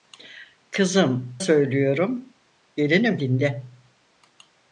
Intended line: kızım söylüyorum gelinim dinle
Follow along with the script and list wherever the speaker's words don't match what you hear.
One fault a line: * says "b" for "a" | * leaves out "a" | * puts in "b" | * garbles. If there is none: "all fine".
all fine